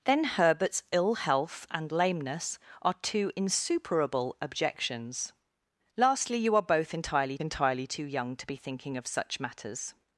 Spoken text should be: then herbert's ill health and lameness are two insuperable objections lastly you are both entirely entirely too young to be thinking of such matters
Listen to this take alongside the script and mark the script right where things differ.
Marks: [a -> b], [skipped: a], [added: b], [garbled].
then herbert's ill health and lameness are two insuperable objections lastly you are both entirely entirely too young to be thinking of such matters